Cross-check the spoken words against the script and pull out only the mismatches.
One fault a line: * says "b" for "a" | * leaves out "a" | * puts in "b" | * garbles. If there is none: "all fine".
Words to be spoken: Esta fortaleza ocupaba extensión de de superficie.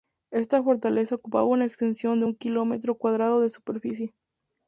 * puts in "una"
* puts in "un kilómetro cuadrado"